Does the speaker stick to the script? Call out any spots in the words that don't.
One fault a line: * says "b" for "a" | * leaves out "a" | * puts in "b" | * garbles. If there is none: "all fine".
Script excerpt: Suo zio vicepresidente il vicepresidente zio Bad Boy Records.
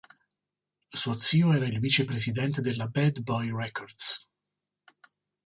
* says "era" for "vicepresidente"
* says "della" for "zio"